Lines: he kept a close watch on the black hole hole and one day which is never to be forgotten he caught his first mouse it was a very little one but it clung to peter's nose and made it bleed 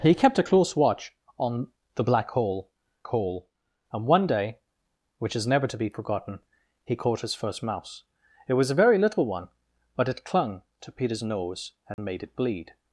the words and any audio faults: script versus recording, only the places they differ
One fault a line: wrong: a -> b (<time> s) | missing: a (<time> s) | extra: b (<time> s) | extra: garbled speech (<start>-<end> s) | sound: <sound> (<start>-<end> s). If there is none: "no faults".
sound: dropout (11.9-12.0 s)